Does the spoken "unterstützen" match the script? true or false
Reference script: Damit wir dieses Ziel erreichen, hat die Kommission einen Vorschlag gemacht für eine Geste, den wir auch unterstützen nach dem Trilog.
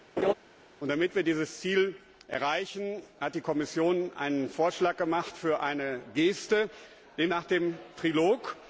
false